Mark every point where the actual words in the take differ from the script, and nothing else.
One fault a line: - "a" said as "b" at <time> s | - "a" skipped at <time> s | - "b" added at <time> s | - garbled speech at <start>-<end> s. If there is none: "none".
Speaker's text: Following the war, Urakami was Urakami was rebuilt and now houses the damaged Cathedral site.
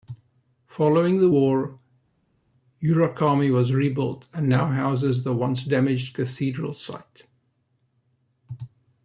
- "Urakami was" skipped at 3.7 s
- "once" added at 5.3 s